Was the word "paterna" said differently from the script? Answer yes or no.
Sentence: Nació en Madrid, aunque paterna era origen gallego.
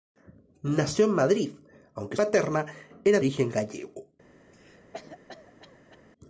no